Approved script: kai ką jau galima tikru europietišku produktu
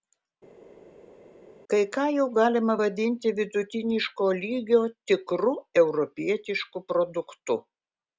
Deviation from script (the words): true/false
true